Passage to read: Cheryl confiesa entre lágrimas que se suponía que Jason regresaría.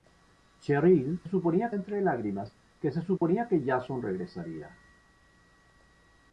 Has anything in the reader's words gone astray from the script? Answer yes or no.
yes